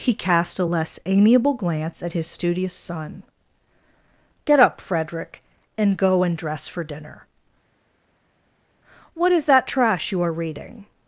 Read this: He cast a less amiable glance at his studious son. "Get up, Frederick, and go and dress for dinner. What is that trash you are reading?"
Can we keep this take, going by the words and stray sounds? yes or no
yes